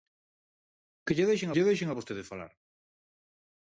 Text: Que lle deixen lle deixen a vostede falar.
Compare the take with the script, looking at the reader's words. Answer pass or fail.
pass